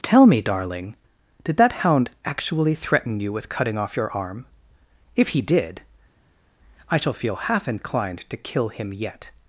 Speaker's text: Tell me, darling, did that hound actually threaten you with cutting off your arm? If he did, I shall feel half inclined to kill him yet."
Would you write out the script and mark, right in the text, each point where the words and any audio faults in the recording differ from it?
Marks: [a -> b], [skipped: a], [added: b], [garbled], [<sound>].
Tell me, darling, did that hound actually threaten you with cutting off your arm? If he did, I shall feel half inclined to kill him yet."